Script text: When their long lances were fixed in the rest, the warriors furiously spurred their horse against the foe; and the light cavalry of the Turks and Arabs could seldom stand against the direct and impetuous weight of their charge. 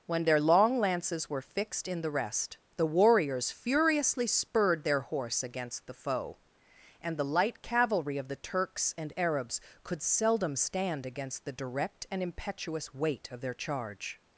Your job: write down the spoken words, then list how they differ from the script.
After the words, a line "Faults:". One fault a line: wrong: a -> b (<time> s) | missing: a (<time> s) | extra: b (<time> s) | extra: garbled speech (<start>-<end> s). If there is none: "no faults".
When their long lances were fixed in the rest, the warriors furiously spurred their horse against the foe; and the light cavalry of the Turks and Arabs could seldom stand against the direct and impetuous weight of their charge.
Faults:
no faults